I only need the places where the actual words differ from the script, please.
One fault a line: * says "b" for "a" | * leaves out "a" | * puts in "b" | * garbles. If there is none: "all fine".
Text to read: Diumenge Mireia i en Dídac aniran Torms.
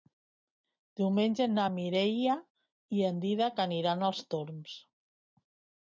* puts in "na"
* puts in "als"